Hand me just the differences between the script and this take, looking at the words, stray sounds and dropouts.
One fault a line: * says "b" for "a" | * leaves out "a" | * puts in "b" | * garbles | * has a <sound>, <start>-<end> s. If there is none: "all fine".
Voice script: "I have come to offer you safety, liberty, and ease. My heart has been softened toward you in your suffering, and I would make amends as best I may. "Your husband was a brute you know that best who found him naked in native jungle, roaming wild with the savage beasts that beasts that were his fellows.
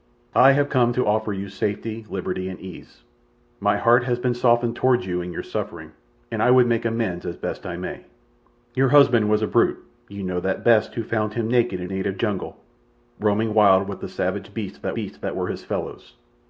all fine